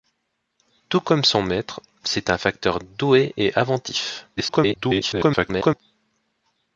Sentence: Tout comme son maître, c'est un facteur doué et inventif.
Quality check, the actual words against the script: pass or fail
fail